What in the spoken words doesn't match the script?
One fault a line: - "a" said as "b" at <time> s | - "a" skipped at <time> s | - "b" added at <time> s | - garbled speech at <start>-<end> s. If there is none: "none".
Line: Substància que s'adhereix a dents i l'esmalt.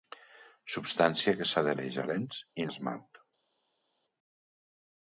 none